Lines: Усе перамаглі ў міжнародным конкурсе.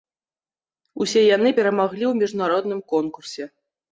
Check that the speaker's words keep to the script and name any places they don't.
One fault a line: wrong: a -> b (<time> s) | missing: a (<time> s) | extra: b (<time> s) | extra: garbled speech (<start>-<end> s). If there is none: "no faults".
extra: яны (1.4 s)